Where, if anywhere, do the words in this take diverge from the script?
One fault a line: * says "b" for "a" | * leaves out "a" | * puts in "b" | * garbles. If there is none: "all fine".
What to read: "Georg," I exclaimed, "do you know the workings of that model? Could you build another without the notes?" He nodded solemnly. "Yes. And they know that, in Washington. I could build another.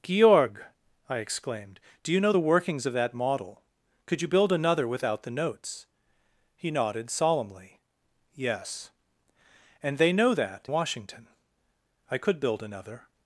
* leaves out "in"